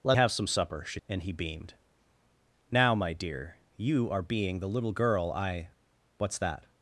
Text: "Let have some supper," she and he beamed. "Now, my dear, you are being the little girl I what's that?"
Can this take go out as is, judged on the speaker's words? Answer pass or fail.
pass